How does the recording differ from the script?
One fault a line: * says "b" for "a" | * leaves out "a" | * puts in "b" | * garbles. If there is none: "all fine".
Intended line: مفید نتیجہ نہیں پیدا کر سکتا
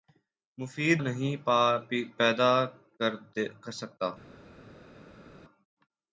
* leaves out "نتیجہ"